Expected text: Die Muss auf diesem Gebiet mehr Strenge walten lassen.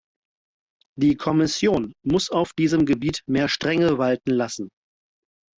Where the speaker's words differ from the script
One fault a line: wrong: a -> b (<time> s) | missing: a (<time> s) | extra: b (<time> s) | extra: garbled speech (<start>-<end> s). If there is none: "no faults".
extra: Kommission (1.1 s)